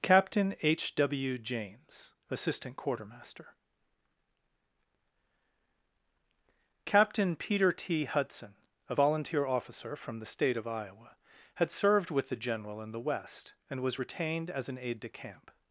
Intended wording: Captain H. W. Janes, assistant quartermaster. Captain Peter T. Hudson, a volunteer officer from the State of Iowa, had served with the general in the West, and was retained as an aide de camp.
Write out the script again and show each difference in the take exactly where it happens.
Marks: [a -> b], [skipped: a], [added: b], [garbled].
Captain H. W. Janes, assistant quartermaster. Captain Peter T. Hudson, a volunteer officer from the State of Iowa, had served with the general in the West, and was retained as an aide de camp.